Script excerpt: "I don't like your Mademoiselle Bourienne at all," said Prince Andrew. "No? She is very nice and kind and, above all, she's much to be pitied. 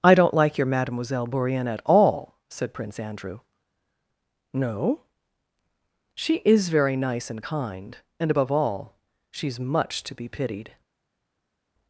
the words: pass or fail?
pass